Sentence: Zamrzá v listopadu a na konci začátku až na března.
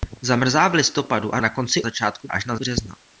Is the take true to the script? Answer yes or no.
yes